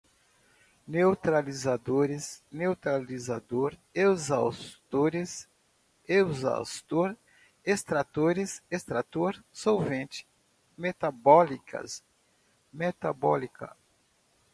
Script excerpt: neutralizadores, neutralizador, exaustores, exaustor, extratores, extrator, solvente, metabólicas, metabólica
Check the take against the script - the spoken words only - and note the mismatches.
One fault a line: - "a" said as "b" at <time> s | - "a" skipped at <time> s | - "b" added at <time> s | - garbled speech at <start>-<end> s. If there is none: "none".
none